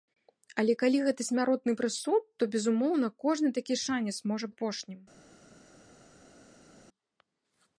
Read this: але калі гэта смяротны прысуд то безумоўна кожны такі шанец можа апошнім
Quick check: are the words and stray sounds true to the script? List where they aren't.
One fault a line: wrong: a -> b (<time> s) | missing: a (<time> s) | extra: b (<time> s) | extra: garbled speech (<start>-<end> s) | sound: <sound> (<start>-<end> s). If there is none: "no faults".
no faults